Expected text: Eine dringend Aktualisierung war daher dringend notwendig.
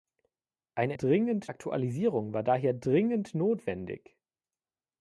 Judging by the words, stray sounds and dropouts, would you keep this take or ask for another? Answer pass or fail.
pass